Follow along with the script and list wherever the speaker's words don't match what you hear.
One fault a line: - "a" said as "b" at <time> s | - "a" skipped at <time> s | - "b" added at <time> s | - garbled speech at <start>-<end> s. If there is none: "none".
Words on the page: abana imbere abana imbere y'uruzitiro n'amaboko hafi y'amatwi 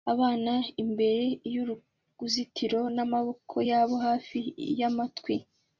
- "abana imbere" skipped at 1.2 s
- "yabo" added at 3.7 s